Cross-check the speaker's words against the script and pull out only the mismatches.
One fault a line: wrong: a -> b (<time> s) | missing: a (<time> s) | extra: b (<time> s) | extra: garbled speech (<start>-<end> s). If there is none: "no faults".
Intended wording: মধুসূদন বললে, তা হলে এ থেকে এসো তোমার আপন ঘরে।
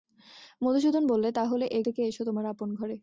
no faults